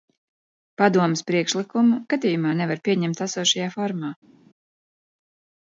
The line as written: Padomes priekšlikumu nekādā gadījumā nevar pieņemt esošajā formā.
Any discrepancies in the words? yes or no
yes